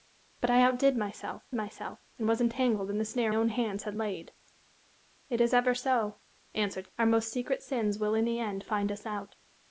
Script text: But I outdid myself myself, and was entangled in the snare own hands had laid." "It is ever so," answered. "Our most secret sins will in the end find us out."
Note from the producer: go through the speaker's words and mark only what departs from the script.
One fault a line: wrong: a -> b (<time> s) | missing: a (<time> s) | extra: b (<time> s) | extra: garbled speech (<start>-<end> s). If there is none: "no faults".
no faults